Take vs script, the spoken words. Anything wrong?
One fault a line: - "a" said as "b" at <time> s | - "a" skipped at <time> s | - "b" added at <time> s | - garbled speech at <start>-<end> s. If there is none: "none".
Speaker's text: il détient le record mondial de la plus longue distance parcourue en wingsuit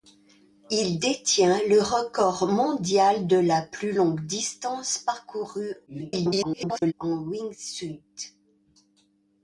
- garbled speech at 5.9-6.9 s